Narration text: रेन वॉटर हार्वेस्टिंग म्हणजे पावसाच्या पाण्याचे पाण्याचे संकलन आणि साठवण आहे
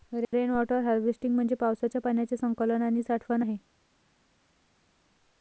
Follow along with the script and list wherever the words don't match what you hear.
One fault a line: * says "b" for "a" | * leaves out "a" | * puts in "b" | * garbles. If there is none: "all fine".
* leaves out "पाण्याचे"